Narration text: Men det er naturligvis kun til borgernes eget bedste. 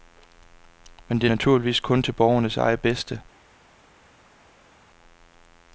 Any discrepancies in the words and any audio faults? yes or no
no